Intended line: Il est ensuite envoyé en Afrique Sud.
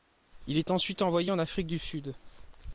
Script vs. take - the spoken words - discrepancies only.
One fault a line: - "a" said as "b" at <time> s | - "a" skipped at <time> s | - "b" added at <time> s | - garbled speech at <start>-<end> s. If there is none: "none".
- "du" added at 1.7 s